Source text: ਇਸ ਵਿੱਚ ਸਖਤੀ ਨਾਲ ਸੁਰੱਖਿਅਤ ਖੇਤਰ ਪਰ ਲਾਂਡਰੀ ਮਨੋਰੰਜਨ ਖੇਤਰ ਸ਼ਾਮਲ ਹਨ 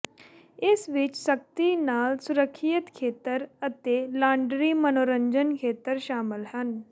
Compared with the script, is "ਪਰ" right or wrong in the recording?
wrong